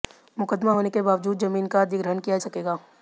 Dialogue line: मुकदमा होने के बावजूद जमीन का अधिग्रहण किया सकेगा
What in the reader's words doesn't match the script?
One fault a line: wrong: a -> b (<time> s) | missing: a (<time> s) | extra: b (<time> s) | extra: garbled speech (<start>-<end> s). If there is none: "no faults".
no faults